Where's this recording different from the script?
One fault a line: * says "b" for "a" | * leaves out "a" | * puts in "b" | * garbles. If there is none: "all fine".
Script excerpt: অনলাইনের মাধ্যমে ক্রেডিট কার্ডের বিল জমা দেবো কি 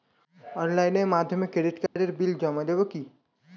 all fine